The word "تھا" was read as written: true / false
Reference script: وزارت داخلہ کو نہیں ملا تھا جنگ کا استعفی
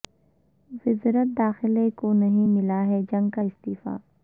false